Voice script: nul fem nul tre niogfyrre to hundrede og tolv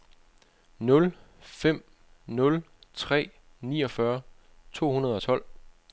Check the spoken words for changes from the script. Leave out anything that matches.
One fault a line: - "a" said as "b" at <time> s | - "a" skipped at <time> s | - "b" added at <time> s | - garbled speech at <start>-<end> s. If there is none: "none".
none